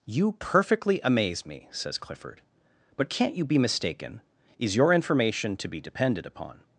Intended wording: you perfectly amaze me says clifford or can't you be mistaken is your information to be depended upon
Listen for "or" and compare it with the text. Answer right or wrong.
wrong